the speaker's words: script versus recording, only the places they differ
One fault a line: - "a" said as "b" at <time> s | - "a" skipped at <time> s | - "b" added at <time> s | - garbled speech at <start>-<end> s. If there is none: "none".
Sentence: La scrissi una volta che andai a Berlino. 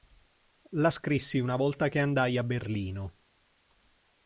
none